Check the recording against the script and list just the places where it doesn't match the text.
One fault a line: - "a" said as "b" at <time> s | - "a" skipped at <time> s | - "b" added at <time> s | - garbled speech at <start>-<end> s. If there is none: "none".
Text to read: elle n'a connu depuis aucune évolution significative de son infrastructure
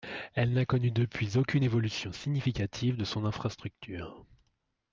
none